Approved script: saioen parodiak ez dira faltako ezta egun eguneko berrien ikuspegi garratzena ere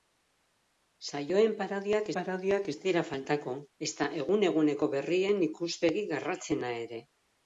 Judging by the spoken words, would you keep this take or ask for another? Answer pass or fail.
fail